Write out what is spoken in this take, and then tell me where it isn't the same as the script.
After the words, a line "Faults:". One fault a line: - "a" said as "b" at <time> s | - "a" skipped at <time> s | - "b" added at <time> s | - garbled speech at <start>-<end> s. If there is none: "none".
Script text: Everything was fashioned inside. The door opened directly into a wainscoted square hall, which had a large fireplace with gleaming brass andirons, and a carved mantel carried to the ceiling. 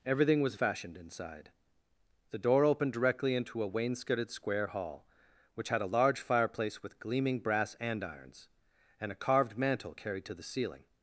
Everything was fashioned inside. The door opened directly into a wainscoted square hall, which had a large fireplace with gleaming brass andirons, and a carved mantel carried to the ceiling.
Faults:
none